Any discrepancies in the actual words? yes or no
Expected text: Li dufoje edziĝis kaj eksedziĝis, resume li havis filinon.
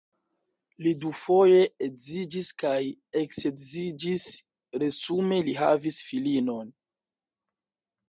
no